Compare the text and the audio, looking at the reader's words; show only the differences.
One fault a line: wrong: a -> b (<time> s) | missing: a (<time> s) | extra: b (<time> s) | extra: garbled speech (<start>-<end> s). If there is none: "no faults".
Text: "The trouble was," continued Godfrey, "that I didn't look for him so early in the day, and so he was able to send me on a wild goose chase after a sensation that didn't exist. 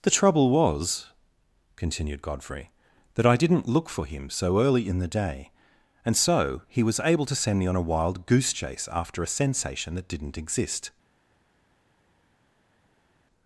no faults